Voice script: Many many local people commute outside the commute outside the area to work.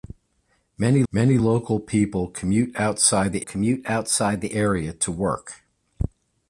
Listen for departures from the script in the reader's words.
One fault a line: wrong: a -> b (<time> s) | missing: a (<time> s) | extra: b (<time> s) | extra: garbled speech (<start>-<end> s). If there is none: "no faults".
no faults